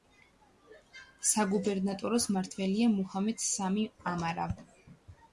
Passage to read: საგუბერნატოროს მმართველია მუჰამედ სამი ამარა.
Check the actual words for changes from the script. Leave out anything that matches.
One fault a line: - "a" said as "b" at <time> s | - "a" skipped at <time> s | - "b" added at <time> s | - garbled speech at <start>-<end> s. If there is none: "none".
none